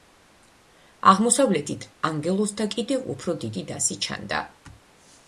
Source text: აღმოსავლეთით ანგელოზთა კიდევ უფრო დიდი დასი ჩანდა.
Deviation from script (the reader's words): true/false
false